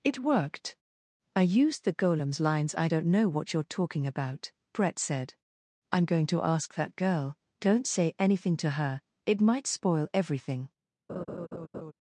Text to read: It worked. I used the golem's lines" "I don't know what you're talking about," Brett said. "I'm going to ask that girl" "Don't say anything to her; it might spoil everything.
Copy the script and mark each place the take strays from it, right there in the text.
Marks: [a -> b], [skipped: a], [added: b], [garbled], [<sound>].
It worked. I used the golem's lines" "I don't know what you're talking about," Brett said. "I'm going to ask that girl" "Don't say anything to her; it might spoil everything. [laugh]